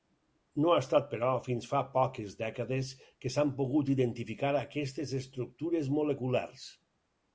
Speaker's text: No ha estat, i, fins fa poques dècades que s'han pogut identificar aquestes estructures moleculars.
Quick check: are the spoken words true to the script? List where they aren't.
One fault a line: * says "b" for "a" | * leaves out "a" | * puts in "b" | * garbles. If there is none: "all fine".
* says "però" for "i"